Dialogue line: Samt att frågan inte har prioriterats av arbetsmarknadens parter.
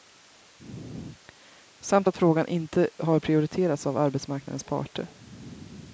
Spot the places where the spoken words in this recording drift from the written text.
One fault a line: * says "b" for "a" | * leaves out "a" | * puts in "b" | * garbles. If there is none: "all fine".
all fine